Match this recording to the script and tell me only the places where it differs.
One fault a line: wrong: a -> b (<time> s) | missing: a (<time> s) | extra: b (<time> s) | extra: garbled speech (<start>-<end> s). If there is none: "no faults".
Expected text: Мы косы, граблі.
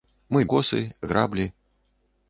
no faults